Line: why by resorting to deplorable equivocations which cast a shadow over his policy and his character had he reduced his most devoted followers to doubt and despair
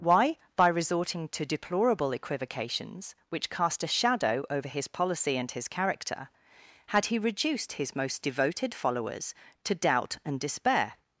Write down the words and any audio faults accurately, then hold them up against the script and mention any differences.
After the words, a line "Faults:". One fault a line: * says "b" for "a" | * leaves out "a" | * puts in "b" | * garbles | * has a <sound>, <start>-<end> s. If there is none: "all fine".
why by resorting to deplorable equivocations which cast a shadow over his policy and his character had he reduced his most devoted followers to doubt and despair
Faults:
all fine